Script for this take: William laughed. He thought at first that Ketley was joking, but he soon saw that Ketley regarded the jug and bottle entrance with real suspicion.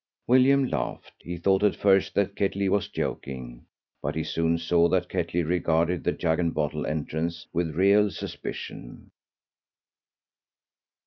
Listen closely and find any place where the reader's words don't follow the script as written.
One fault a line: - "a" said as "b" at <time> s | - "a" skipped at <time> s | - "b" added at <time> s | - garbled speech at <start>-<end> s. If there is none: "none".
none